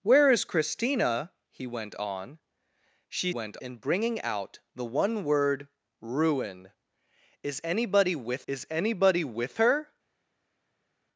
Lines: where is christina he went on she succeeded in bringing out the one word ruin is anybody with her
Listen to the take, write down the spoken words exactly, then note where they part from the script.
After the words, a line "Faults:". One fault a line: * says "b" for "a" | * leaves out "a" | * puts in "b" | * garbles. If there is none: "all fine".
where is christina he went on she went in bringing out the one word ruin is anybody with is anybody with her
Faults:
* says "went" for "succeeded"
* puts in "is anybody with"